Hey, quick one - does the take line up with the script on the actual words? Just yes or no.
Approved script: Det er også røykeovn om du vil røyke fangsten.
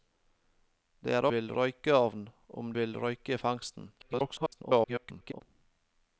no